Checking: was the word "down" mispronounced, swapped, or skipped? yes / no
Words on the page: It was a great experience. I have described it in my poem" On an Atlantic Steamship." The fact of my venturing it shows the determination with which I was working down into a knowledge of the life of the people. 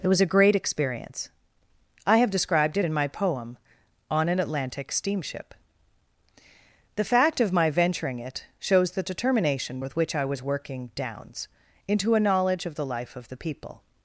yes